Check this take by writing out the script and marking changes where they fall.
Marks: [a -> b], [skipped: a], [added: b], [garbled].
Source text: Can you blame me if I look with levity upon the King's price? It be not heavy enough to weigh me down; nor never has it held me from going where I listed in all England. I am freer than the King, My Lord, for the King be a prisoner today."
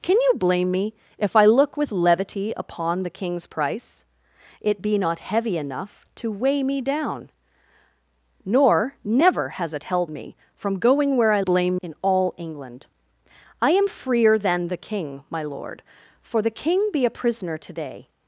Can you blame me if I look with levity upon the King's price? It be not heavy enough to weigh me down; nor never has it held me from going where I [listed -> blame] in all England. I am freer than the King, My Lord, for the King be a prisoner today."